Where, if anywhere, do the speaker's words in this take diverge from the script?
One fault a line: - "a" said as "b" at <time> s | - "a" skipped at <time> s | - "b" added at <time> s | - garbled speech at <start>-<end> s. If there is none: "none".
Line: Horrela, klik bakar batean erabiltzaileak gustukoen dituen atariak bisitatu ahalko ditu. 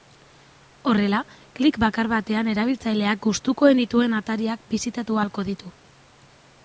none